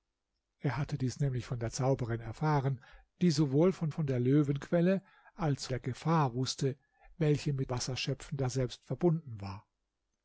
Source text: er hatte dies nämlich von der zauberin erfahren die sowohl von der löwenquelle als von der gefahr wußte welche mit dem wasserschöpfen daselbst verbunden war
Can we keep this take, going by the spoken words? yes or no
no